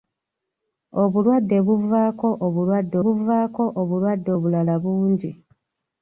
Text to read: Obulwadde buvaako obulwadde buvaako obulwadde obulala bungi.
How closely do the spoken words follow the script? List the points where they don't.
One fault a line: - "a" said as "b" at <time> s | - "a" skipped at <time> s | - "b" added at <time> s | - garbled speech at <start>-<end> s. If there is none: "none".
none